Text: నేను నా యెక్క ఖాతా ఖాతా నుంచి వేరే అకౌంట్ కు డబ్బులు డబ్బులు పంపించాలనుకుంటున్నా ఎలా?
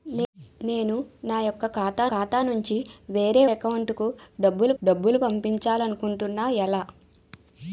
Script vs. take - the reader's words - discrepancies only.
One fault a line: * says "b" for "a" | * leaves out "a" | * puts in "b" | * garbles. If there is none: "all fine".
all fine